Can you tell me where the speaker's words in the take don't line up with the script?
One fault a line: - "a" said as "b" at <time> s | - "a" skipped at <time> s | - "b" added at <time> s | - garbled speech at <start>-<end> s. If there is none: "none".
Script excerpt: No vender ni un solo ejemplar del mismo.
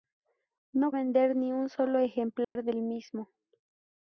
none